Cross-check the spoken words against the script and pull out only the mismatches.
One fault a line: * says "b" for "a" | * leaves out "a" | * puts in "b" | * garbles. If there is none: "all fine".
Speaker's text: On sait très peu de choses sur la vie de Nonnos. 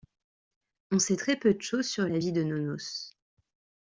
all fine